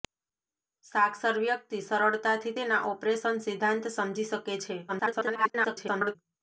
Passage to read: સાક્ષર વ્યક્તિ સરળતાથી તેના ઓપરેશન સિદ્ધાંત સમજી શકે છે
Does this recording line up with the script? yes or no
no